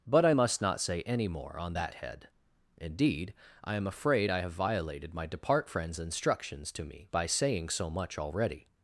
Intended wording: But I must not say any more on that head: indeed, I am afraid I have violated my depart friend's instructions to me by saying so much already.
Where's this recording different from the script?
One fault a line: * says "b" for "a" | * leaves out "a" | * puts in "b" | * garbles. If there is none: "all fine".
all fine